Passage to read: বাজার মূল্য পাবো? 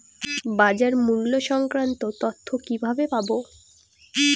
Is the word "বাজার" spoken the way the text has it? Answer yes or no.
yes